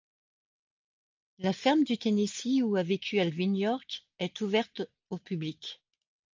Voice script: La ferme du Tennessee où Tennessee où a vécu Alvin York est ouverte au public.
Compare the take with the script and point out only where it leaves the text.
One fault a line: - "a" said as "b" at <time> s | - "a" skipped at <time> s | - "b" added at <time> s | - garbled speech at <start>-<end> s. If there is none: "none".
- "Tennessee où" skipped at 2.8 s